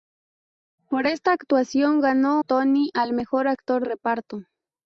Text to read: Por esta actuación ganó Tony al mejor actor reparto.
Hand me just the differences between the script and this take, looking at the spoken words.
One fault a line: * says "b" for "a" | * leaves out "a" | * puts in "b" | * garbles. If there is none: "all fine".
all fine